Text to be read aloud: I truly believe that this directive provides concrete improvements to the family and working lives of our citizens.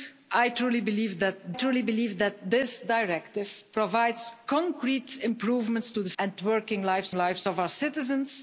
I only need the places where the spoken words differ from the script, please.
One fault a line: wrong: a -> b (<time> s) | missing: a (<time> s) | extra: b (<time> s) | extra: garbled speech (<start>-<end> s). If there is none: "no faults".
extra: truly believe that (1.5 s)
missing: family (6.1 s)
extra: lives (7.1 s)